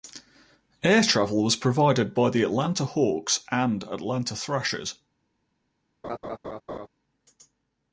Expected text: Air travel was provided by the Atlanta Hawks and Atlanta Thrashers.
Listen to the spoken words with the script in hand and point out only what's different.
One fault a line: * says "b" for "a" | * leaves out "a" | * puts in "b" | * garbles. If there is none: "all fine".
all fine